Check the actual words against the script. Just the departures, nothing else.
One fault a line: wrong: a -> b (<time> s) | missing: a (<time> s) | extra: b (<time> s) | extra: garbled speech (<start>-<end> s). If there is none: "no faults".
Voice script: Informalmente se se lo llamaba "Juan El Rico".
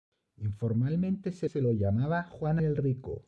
no faults